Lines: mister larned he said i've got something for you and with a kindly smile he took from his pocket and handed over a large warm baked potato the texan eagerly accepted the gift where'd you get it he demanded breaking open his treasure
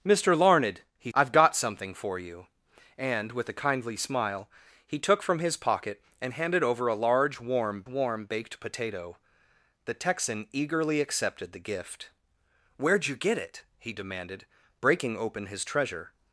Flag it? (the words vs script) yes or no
yes